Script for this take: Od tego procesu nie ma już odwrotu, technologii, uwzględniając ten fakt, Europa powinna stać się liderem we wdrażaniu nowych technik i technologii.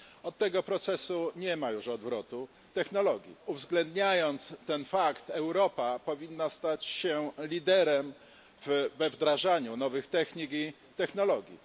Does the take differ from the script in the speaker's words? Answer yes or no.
no